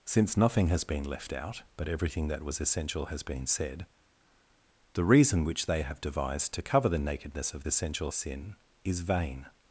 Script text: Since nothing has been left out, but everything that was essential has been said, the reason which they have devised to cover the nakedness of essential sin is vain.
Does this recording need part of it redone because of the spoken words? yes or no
no